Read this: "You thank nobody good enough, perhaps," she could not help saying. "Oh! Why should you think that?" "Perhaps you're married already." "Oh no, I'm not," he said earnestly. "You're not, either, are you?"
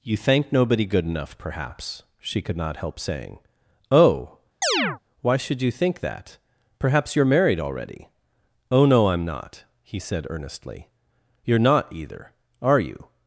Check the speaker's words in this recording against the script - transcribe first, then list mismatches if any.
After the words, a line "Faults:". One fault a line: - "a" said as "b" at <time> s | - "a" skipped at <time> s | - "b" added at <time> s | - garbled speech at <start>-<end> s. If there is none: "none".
"You thank nobody good enough, perhaps," she could not help saying. "Oh! Why should you think that?" "Perhaps you're married already." "Oh no, I'm not," he said earnestly. "You're not, either, are you?"
Faults:
none